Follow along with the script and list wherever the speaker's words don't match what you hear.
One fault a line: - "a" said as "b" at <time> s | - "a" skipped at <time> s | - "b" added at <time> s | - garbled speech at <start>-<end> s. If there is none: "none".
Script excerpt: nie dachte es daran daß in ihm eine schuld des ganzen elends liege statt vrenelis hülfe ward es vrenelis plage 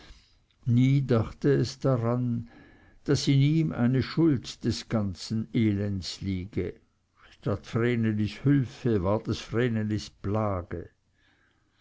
none